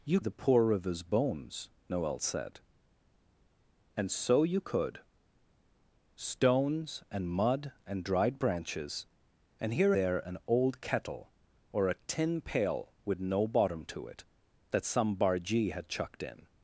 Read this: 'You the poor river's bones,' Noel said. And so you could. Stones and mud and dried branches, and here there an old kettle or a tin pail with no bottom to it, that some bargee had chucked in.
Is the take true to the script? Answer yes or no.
yes